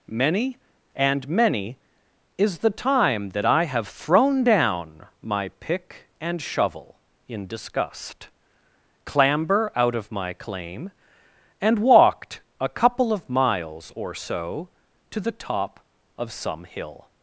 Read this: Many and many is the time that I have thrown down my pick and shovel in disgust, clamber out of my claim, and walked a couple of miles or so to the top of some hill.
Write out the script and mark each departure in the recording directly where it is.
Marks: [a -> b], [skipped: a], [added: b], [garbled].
Many and many is the time that I have thrown down my pick and shovel in disgust, clamber out of my claim, and walked a couple of miles or so to the top of some hill.